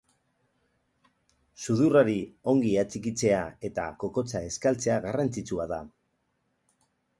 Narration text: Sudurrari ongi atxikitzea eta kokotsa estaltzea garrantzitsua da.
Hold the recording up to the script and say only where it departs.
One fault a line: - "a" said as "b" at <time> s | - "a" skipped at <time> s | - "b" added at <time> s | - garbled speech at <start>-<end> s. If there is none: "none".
none